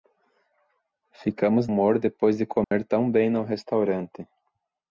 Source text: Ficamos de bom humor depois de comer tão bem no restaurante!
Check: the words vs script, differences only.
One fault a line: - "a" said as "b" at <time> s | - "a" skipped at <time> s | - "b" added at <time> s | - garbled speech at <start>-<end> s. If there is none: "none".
- "de bom" skipped at 1.7 s